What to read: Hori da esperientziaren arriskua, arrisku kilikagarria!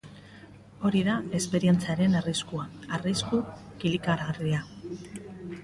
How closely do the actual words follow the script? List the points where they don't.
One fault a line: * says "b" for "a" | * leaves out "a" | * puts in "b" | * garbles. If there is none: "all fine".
all fine